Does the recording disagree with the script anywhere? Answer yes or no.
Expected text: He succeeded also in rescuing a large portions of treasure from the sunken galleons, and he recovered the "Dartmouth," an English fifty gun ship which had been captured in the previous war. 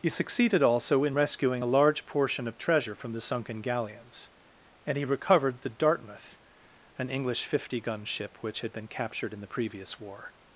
yes